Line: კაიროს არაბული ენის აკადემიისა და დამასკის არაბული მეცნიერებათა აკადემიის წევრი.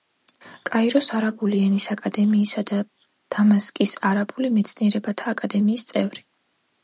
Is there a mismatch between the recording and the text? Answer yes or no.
no